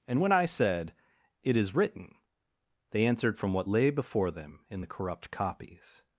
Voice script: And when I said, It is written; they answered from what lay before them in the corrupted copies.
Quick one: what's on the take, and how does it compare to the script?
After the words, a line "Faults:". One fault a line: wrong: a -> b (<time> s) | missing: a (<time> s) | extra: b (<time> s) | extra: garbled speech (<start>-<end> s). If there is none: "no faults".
And when I said, It is written; they answered from what lay before them in the corrupt copies.
Faults:
wrong: corrupted -> corrupt (4.9 s)